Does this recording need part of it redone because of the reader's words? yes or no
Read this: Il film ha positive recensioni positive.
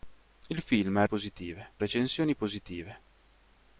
no